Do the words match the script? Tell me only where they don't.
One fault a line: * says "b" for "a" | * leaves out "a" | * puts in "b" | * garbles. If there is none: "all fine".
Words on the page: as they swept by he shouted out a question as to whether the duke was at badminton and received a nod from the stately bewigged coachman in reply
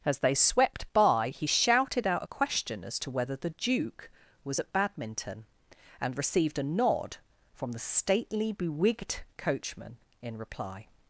all fine